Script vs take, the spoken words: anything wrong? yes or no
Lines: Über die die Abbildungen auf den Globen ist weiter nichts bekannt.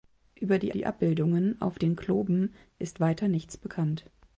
no